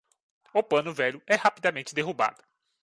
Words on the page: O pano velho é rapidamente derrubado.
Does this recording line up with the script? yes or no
yes